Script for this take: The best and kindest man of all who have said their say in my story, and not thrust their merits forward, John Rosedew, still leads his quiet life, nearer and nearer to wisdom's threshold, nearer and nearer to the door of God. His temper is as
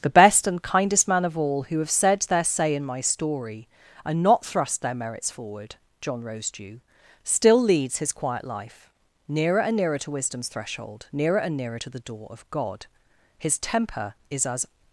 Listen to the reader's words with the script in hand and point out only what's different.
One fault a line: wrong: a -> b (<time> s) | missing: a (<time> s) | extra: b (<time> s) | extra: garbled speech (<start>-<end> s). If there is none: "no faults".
no faults